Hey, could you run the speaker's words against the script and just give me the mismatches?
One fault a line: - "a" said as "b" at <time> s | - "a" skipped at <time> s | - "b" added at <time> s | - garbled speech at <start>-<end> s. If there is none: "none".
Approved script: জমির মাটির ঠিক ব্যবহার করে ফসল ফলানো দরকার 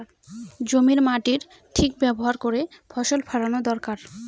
none